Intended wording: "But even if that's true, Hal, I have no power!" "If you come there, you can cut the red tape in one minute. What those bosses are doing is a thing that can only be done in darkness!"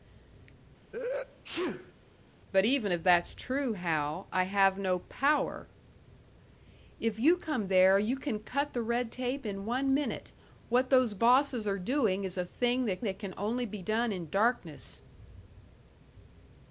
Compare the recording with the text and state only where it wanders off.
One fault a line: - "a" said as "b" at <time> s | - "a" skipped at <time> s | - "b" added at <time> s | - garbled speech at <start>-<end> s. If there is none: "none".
- "that" added at 13.0 s